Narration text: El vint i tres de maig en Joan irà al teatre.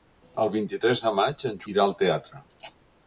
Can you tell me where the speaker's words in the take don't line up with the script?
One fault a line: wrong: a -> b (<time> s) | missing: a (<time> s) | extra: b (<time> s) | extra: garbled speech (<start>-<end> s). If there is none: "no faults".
missing: Joan (1.6 s)